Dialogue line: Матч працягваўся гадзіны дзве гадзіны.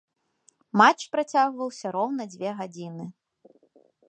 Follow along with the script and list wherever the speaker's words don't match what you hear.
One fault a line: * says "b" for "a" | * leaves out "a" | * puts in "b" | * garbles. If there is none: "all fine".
* says "роўна" for "гадзіны"